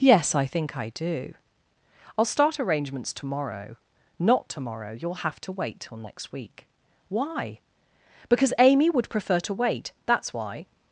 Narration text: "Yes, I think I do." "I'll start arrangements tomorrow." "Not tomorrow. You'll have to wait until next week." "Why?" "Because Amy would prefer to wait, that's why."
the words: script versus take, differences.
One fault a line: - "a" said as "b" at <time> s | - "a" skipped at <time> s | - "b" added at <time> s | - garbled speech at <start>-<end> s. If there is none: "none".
- "until" said as "till" at 5.8 s